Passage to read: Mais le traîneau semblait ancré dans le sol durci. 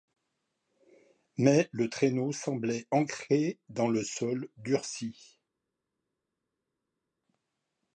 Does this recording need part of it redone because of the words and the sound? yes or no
no